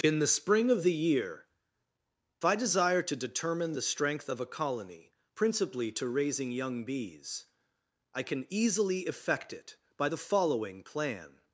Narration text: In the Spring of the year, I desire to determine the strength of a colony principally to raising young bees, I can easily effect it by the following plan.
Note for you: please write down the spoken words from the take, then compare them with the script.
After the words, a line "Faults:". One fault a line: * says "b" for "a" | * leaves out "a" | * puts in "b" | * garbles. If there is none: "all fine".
In the Spring of the year, I desire to determine the strength of a colony principally to raising young bees, I can easily effect it by the following plan.
Faults:
all fine